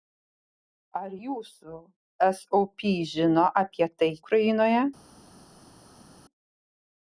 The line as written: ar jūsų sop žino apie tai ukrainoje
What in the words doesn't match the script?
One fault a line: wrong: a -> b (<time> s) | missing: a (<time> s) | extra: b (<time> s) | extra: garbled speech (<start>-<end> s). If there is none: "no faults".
no faults